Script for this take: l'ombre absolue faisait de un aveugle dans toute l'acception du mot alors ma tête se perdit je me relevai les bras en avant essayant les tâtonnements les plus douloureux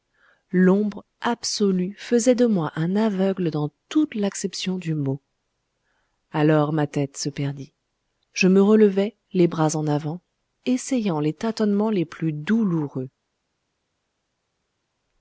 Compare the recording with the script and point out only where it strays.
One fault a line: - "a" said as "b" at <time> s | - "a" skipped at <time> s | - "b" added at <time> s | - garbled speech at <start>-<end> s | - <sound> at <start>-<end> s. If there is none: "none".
- "moi" added at 2.5 s